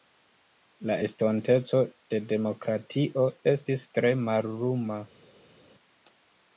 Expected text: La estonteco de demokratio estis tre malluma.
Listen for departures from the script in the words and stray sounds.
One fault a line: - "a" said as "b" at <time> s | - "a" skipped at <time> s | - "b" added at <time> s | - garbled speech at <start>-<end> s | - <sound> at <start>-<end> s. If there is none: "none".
none